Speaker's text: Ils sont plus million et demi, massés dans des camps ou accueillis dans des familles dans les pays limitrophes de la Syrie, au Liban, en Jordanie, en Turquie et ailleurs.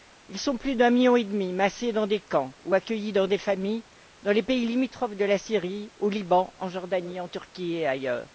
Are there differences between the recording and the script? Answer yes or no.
yes